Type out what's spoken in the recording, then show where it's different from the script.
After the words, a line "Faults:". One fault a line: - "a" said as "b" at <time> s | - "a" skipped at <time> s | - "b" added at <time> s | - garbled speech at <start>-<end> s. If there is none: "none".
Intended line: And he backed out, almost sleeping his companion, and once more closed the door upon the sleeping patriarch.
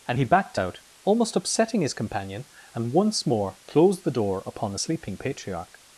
And he backed out, almost upsetting his companion, and once more closed the door upon the sleeping patriarch.
Faults:
- "sleeping" said as "upsetting" at 1.4 s